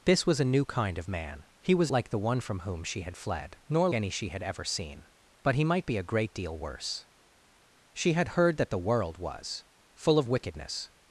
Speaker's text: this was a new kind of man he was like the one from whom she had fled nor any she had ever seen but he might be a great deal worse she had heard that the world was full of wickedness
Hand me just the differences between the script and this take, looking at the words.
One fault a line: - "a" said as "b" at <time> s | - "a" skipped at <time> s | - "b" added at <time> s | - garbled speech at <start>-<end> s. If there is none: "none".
none